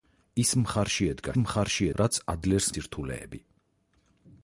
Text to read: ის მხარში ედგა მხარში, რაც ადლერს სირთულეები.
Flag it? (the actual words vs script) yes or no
no